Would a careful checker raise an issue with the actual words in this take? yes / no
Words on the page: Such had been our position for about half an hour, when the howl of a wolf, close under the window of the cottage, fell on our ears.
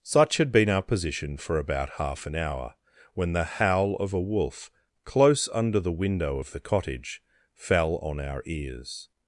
no